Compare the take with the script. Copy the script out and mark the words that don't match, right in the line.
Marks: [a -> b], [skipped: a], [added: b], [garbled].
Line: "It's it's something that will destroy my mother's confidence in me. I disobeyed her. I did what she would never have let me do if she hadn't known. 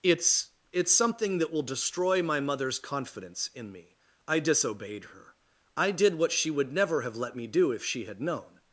"It's it's something that will destroy my mother's confidence in me. I disobeyed her. I did what she would never have let me do if she [hadn't -> had] known.